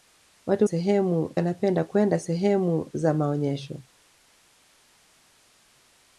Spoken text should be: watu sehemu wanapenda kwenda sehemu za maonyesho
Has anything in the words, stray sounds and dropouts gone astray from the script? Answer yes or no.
no